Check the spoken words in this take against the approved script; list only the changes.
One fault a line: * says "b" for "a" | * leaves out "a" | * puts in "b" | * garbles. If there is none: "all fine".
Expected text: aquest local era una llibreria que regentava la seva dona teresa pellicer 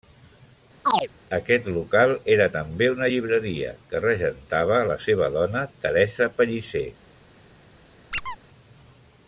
* puts in "també"